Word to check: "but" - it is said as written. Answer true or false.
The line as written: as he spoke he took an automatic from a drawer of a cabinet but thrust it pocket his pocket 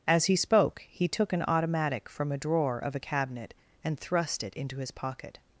false